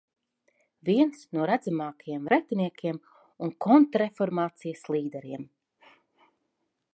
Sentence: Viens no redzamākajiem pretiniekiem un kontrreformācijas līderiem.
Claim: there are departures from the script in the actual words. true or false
false